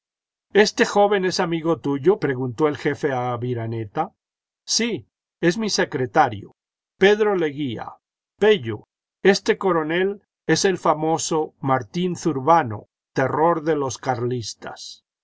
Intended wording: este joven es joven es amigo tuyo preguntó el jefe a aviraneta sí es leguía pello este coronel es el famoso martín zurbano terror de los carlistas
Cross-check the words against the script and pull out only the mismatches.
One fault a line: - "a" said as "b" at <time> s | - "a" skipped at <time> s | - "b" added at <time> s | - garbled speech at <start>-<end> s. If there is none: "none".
- "joven es" skipped at 1.4 s
- "mi secretario pedro" added at 5.6 s